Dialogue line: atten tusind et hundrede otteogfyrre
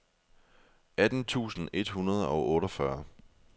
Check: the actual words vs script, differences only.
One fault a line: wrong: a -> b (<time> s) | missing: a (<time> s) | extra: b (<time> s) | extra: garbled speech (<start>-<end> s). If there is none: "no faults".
extra: og (2.3 s)